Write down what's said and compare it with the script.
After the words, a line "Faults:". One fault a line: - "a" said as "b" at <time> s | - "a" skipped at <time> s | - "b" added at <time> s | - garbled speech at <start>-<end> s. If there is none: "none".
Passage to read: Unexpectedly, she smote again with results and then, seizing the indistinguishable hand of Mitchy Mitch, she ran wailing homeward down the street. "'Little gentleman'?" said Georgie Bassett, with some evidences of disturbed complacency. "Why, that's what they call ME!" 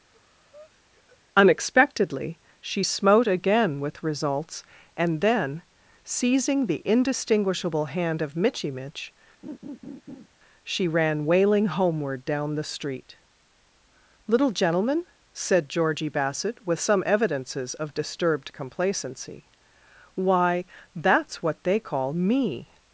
Unexpectedly, she smote again with results and then, seizing the indistinguishable hand of Mitchy Mitch, she ran wailing homeward down the street. "'Little gentleman'?" said Georgie Bassett, with some evidences of disturbed complacency. "Why, that's what they call ME!"
Faults:
none